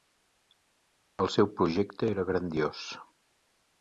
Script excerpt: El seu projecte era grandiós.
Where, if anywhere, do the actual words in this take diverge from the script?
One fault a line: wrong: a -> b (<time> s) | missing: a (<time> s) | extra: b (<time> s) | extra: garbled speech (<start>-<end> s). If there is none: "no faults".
no faults